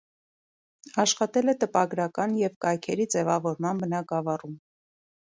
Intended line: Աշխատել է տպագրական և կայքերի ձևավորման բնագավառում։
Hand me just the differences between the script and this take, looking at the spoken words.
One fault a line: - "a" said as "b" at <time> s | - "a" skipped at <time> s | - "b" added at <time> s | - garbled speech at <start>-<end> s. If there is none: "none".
none